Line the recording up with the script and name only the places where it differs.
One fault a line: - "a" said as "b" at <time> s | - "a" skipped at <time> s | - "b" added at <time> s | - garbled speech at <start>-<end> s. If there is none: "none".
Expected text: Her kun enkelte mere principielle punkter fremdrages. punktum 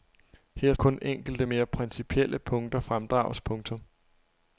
none